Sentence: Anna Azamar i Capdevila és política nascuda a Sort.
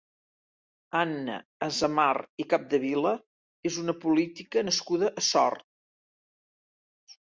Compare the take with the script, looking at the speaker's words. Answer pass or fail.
fail